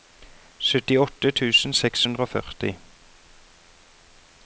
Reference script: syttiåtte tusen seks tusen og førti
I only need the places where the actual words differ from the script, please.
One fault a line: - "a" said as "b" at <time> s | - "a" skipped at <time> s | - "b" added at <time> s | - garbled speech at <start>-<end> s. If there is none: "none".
- "tusen" said as "hundre" at 2.1 s